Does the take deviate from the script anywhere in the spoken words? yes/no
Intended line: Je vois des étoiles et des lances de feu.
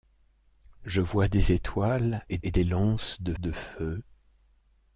yes